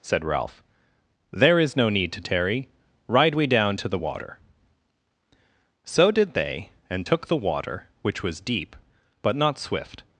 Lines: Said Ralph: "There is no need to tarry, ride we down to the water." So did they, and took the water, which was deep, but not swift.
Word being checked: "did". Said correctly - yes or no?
yes